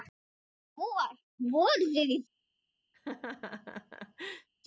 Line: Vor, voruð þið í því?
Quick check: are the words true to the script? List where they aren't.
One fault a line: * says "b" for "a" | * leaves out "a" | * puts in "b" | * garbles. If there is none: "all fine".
all fine